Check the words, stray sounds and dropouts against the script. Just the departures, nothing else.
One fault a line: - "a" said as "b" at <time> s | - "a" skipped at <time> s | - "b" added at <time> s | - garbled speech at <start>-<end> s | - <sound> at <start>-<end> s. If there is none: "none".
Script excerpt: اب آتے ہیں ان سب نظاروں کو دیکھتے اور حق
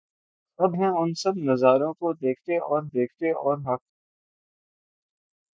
- "آتے" skipped at 0.8 s
- "دیکھتے اور" added at 2.9 s